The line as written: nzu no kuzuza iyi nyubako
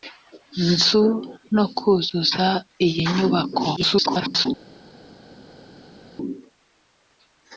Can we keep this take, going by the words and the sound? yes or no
no